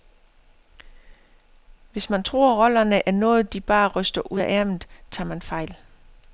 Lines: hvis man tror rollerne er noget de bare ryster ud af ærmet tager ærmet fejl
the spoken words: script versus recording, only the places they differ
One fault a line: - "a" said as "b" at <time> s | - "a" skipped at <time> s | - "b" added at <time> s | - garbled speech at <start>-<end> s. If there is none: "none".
- "ærmet" said as "man" at 5.3 s